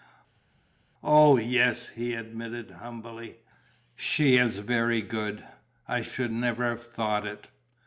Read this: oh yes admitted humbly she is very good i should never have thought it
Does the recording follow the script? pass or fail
fail